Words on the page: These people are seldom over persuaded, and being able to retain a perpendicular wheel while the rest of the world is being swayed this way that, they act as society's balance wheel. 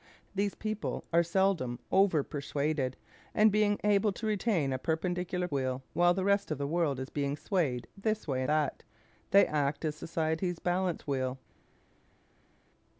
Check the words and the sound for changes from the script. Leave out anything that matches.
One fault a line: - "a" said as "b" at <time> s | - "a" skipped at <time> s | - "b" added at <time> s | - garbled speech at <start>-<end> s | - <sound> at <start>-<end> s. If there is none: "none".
none